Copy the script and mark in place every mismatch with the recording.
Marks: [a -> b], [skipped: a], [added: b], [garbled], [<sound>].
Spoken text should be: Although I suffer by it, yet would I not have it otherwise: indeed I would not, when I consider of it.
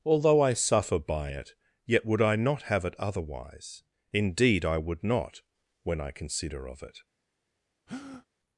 Although I suffer by it, yet would I not have it otherwise: indeed I would not, when I consider of it. [breath]